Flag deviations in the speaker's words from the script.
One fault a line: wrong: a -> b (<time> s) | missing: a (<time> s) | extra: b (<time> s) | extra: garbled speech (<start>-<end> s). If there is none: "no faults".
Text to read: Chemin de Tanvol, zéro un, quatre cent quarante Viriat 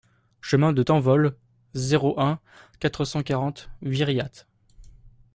no faults